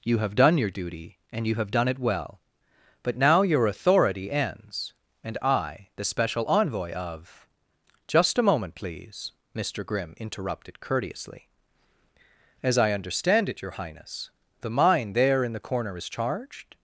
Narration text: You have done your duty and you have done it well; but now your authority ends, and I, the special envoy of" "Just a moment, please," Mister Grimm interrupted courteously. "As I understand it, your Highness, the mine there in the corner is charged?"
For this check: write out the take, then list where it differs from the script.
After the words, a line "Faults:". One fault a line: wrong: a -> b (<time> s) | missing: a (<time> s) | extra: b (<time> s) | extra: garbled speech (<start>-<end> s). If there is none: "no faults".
You have done your duty and you have done it well; but now your authority ends, and I, the special envoy of" "Just a moment, please," Mister Grimm interrupted courteously. "As I understand it, your Highness, the mine there in the corner is charged?"
Faults:
no faults